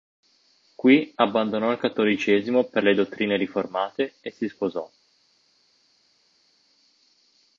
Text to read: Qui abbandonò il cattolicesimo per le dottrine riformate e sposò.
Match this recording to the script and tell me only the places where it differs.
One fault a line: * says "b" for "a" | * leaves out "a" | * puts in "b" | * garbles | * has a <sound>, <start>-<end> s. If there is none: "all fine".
* puts in "si"